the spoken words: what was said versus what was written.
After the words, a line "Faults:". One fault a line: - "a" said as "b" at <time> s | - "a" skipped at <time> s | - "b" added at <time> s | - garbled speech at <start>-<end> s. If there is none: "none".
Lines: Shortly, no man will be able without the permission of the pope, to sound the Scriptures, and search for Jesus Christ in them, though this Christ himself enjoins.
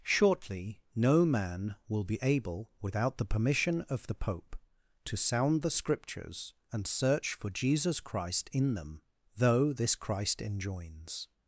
Shortly, no man will be able without the permission of the pope, to sound the Scriptures, and search for Jesus Christ in them, though this Christ enjoins.
Faults:
- "himself" skipped at 10.4 s